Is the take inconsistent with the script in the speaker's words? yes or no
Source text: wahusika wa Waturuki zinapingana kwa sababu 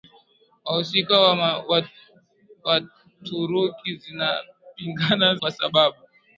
no